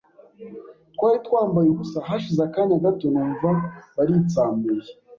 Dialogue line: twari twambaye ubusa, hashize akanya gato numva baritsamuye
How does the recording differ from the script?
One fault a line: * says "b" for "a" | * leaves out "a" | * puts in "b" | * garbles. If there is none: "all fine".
all fine